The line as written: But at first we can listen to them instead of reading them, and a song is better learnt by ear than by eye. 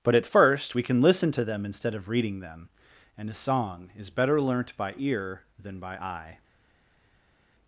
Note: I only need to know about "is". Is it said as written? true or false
true